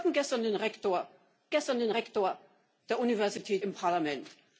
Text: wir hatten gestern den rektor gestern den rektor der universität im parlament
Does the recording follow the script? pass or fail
pass